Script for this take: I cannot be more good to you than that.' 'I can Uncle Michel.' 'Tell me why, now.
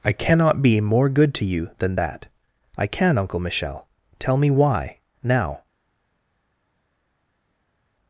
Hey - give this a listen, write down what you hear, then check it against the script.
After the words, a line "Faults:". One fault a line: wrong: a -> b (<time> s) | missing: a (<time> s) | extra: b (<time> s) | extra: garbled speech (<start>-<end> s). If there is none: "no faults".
I cannot be more good to you than that.' 'I can Uncle Michel.' 'Tell me why, now.
Faults:
no faults